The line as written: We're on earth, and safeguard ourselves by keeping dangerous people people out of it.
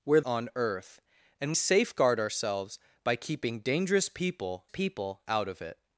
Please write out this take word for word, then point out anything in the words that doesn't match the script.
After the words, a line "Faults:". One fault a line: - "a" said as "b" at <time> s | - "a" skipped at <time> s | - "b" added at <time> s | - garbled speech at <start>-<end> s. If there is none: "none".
We're on earth, and safeguard ourselves by keeping dangerous people people out of it.
Faults:
none